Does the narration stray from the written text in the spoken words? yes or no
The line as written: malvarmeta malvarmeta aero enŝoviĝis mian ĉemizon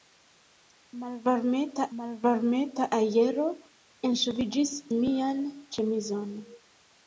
no